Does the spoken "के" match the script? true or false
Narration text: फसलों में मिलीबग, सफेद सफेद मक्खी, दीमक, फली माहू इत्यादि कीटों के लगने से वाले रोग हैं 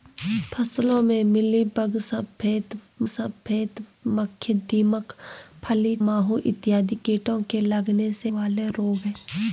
true